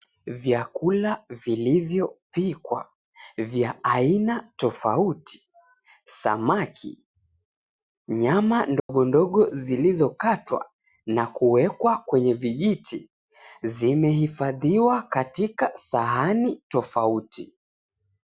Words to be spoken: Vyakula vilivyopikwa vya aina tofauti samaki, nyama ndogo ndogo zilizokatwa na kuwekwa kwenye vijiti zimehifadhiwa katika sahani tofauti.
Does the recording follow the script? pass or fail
pass